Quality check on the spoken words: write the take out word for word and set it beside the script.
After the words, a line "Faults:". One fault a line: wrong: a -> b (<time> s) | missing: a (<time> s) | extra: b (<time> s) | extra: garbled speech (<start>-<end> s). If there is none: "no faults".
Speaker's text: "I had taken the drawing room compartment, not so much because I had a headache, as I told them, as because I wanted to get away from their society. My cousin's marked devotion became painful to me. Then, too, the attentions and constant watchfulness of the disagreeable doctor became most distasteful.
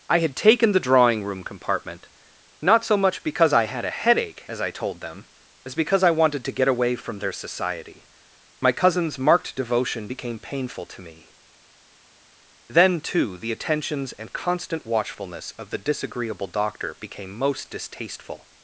"I had taken the drawing room compartment, not so much because I had a headache, as I told them, as because I wanted to get away from their society. My cousin's marked devotion became painful to me. Then, too, the attentions and constant watchfulness of the disagreeable doctor became most distasteful.
Faults:
no faults